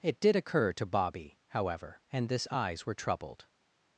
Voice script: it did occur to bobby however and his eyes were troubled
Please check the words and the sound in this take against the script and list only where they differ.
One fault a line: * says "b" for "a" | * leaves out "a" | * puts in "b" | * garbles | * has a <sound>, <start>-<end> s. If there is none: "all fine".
* says "this" for "his"